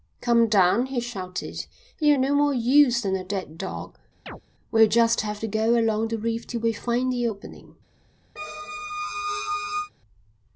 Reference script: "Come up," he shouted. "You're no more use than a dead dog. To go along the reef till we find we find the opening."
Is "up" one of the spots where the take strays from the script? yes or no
yes